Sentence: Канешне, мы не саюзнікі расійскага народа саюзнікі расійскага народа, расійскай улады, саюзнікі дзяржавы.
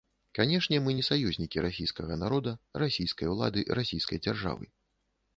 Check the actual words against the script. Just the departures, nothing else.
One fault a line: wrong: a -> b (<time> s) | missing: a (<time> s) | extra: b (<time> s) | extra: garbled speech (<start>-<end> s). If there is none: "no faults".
missing: саюзнікі расійскага народа (2.5 s)
wrong: саюзнікі -> расійскай (3.8 s)